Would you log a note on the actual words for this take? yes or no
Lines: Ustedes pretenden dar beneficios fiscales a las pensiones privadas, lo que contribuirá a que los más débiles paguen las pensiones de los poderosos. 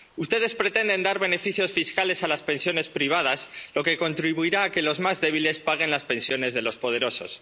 no